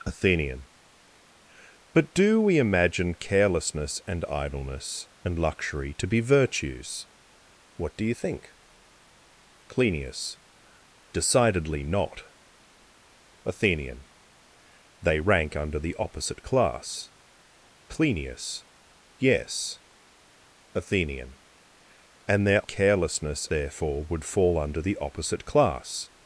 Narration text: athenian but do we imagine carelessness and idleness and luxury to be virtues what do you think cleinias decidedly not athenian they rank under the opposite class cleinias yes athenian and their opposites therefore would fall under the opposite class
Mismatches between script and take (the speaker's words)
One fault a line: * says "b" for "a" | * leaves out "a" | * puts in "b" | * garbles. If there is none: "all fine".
* says "carelessness" for "opposites"